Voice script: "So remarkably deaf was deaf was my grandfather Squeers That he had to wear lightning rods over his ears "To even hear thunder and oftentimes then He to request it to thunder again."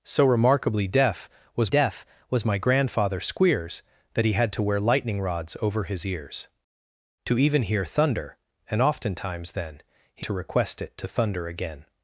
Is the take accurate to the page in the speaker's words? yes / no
yes